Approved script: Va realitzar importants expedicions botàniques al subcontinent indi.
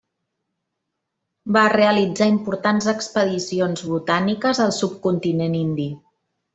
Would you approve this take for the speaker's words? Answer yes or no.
yes